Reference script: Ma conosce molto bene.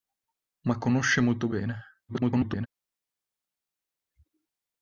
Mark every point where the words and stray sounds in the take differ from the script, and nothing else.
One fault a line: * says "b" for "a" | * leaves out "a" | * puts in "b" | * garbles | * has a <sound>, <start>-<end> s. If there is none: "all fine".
* garbles